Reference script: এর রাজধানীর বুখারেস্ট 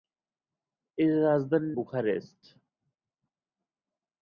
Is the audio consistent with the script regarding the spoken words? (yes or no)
yes